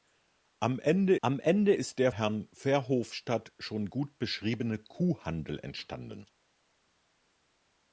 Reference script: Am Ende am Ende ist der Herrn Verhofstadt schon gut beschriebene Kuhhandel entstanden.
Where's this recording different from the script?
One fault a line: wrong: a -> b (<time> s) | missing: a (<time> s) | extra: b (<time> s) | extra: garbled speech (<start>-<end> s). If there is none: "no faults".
no faults